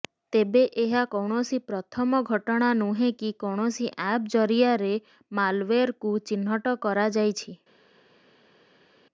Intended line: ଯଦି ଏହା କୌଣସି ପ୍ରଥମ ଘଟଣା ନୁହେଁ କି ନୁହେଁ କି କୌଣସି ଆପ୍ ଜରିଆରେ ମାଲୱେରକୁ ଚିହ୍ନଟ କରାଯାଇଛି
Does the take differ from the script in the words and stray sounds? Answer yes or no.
yes